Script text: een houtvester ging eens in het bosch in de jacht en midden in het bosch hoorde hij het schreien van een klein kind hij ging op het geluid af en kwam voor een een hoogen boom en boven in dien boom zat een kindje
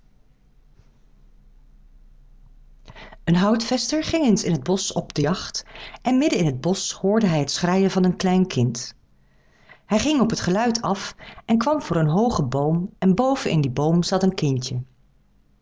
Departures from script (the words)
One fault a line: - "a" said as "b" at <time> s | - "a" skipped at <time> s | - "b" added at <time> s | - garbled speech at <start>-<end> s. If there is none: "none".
- "in" said as "op" at 4.9 s
- "een" skipped at 12.1 s